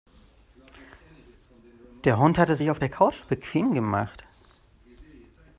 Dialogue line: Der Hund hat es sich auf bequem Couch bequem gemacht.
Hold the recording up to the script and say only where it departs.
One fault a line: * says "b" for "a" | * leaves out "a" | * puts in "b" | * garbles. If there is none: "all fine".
* says "der" for "bequem"